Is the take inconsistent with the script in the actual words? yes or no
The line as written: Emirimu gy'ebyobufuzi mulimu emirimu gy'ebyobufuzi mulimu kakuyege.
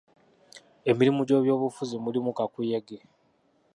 yes